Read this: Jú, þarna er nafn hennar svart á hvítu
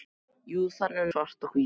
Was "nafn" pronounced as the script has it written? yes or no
no